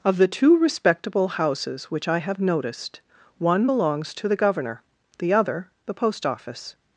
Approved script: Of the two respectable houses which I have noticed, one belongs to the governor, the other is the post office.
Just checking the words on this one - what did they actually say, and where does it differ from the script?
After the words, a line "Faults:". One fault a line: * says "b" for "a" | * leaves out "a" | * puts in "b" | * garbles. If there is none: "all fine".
Of the two respectable houses which I have noticed, one belongs to the governor, the other the post office.
Faults:
* leaves out "is"